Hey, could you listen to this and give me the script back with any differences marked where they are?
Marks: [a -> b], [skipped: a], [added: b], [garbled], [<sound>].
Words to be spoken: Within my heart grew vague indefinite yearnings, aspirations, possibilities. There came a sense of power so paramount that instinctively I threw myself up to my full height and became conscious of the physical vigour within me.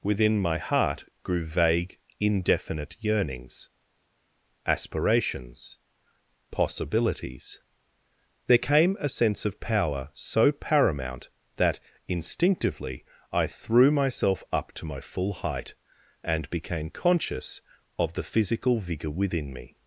Within my heart grew vague indefinite yearnings, aspirations, possibilities. There came a sense of power so paramount that instinctively I threw myself up to my full height and became conscious of the physical vigour within me.